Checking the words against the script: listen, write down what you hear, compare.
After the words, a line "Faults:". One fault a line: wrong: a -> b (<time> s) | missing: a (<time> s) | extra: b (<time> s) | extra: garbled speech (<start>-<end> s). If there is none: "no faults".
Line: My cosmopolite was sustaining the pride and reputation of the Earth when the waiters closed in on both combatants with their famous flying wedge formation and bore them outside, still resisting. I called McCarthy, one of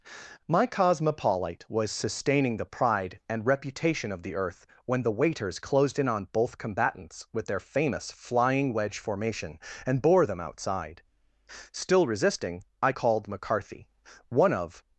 My cosmopolite was sustaining the pride and reputation of the Earth when the waiters closed in on both combatants with their famous flying wedge formation and bore them outside, still resisting. I called McCarthy, one of
Faults:
no faults